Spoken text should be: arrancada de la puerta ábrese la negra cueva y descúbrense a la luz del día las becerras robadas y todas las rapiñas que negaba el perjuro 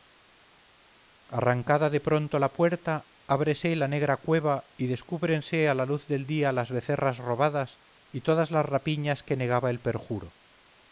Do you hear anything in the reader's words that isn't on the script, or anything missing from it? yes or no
yes